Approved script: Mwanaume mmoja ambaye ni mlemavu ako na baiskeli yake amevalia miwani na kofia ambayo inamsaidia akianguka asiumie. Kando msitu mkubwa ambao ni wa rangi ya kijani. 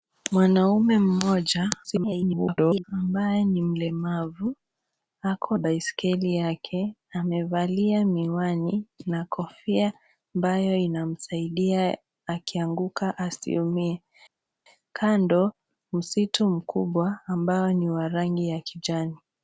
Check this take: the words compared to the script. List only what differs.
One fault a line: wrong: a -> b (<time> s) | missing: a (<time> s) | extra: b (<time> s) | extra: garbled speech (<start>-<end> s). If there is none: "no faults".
extra: garbled speech (1.8-2.8 s)
missing: na (5.6 s)